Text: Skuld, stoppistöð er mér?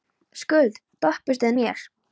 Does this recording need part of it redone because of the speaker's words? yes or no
no